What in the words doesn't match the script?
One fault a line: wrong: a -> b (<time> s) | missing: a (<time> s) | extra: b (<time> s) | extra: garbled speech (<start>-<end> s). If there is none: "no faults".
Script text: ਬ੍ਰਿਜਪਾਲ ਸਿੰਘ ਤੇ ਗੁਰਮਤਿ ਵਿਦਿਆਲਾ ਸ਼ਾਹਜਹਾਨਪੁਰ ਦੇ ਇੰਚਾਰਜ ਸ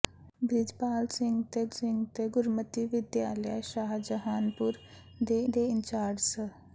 extra: ਸਿੰਘ ਤੇ (1.7 s)
extra: ਦੇ (5.5 s)